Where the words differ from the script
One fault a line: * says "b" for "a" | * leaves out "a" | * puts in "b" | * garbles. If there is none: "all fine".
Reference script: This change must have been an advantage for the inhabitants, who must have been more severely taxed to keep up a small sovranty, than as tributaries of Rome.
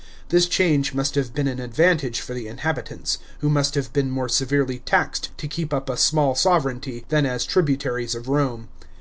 all fine